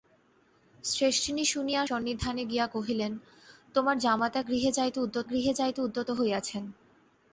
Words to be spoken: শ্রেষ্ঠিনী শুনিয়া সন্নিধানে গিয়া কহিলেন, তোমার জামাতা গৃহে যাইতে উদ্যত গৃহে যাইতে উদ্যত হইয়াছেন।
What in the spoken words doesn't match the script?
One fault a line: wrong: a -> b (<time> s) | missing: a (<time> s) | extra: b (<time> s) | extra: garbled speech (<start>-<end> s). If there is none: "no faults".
no faults